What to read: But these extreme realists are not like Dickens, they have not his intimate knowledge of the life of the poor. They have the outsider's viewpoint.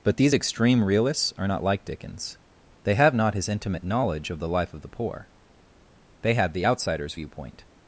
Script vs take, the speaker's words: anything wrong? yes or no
no